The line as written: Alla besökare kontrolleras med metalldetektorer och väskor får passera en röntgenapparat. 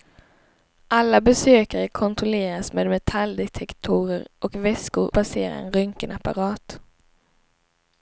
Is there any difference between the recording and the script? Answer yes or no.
yes